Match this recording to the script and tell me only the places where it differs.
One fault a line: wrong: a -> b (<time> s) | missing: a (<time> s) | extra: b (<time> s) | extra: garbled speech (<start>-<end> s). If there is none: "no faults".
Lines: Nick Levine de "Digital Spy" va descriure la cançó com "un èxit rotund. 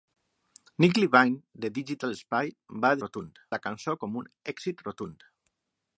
wrong: descriure -> rotund (3.0 s)